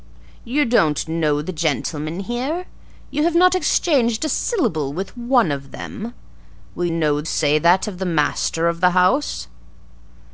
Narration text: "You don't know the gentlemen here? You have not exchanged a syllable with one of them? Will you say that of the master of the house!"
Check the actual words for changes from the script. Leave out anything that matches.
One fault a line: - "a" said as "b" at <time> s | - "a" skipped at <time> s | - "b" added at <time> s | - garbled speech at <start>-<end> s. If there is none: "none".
- "you" said as "know" at 6.9 s